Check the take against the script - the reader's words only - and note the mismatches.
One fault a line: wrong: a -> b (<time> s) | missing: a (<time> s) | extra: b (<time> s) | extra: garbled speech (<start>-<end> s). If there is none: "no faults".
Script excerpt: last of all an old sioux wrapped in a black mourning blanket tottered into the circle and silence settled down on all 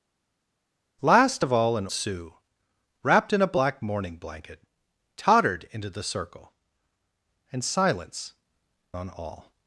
missing: old (1.9 s)
missing: settled down (8.3 s)